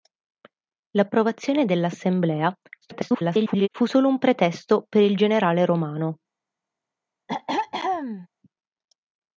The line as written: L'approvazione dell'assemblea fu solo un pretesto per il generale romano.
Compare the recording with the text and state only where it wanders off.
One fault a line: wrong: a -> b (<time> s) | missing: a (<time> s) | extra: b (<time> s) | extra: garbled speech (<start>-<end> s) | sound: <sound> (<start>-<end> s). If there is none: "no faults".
extra: garbled speech (2.8-3.7 s)
sound: throat clearing (7.3-8.3 s)